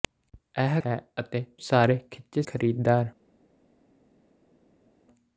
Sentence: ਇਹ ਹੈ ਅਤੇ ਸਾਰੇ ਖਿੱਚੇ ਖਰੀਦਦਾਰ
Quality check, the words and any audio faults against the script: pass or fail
pass